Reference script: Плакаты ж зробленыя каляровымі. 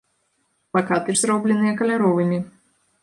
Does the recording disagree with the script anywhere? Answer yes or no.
no